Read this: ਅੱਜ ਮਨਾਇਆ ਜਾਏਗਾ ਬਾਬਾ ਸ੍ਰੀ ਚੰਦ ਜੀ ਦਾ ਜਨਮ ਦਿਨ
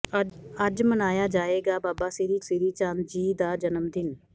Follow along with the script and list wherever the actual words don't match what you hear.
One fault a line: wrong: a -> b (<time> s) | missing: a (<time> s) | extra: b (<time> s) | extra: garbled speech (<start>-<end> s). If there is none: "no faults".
extra: ਸ੍ਰੀ (2.4 s)